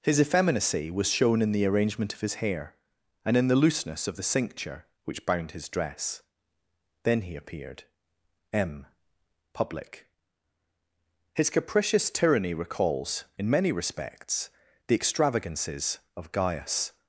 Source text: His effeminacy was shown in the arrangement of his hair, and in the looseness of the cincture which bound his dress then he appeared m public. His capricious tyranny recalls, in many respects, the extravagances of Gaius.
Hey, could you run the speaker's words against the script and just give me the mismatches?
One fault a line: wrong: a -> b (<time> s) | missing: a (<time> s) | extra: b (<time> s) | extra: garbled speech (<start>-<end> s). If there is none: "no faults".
no faults